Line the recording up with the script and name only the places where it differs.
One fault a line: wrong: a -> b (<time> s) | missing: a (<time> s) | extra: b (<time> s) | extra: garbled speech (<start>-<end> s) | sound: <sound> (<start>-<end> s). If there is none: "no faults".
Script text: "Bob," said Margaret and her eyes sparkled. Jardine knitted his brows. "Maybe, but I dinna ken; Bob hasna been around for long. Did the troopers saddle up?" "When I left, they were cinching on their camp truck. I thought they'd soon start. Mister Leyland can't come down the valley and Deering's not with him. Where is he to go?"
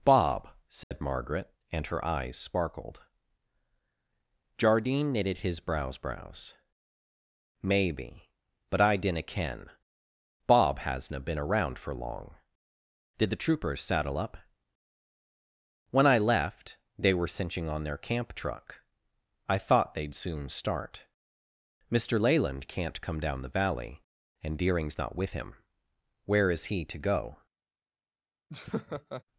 sound: dropout (0.8-0.9 s)
extra: brows (6.0 s)
sound: laugh (28.5-29.2 s)